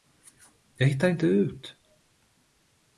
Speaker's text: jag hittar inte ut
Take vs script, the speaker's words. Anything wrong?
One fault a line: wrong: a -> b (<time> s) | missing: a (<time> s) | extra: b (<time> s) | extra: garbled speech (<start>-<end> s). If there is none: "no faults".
no faults